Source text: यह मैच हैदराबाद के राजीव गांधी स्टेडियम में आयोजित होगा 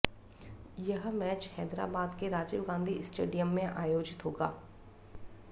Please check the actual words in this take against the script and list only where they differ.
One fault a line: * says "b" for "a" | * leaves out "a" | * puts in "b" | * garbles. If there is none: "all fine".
all fine